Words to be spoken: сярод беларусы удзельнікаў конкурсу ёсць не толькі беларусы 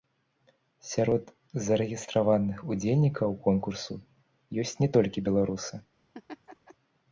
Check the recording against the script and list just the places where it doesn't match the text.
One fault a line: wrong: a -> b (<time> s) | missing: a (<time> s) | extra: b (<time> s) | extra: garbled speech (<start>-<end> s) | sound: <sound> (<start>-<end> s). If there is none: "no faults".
wrong: беларусы -> зарэгістраваных (1.6 s)
sound: laugh (6.1-6.7 s)